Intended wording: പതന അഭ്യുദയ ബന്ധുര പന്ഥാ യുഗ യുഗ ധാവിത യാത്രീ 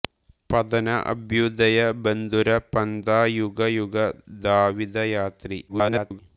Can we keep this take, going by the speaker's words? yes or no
no